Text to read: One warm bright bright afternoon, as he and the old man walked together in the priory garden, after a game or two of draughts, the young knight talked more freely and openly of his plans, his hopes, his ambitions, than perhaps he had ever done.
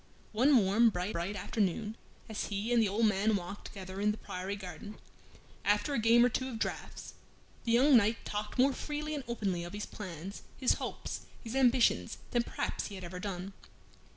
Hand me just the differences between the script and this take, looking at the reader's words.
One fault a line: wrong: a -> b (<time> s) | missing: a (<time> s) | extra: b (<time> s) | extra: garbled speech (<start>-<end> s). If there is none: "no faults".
no faults